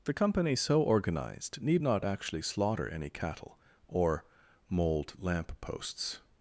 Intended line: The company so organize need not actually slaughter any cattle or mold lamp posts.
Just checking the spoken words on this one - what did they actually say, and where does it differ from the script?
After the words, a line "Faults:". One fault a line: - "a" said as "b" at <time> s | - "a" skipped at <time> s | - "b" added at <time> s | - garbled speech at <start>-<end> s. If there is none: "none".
The company so organized need not actually slaughter any cattle or mold lamp posts.
Faults:
- "organize" said as "organized" at 0.8 s